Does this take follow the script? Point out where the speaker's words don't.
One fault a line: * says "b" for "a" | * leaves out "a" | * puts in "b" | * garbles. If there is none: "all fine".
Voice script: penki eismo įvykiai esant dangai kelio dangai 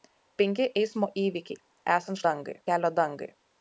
all fine